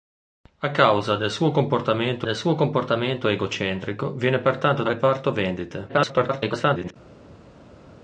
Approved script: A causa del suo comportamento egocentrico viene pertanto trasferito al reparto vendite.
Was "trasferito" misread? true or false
true